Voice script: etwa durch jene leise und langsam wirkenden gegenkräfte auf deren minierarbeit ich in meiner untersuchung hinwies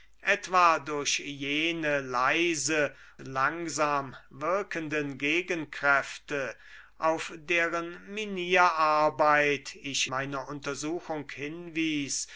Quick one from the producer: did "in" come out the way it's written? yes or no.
no